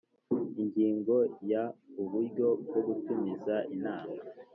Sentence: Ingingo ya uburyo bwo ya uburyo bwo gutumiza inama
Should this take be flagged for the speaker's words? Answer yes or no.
yes